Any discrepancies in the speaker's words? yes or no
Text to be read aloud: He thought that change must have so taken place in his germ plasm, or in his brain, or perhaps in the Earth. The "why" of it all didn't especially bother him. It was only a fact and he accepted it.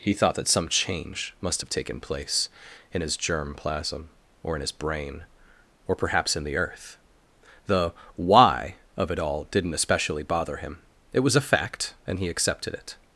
yes